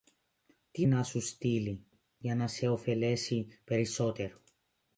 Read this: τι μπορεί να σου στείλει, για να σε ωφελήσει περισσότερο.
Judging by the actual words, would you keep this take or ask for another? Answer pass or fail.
fail